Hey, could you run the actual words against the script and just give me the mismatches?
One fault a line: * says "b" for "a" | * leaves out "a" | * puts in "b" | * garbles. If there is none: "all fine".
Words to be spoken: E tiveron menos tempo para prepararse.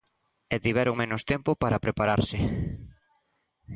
all fine